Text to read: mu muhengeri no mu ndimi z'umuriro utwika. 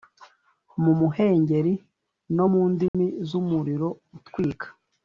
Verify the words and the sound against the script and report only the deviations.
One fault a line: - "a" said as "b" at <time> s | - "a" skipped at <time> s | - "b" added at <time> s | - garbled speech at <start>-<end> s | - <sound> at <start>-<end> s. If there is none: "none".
- dropout at 2.9-2.9 s